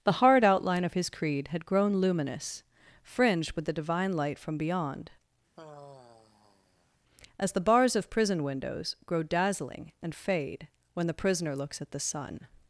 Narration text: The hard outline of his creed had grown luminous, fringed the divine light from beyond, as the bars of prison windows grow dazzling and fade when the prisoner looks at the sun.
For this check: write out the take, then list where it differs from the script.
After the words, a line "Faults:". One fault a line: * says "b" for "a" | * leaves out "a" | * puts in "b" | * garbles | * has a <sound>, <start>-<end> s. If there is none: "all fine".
The hard outline of his creed had grown luminous, fringed with the divine light from beyond, as the bars of prison windows grow dazzling and fade when the prisoner looks at the sun.
Faults:
* puts in "with"
* has a sigh, 5.6-7.0 s